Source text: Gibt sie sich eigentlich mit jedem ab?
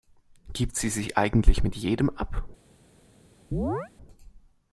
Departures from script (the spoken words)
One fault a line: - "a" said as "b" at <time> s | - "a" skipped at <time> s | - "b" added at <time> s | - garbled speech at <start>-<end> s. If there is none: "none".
none